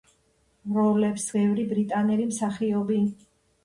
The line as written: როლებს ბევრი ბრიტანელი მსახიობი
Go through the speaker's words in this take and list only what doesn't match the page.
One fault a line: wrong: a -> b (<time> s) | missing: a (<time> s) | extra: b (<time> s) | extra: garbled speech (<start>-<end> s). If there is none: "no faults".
no faults